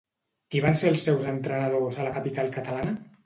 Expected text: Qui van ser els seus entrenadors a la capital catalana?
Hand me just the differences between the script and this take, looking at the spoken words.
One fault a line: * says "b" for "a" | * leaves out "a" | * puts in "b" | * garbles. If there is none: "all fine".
all fine